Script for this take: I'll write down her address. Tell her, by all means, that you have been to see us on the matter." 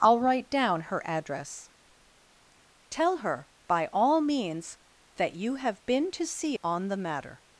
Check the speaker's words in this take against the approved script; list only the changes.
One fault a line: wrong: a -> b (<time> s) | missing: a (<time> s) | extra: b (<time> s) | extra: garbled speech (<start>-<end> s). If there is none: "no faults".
missing: us (6.6 s)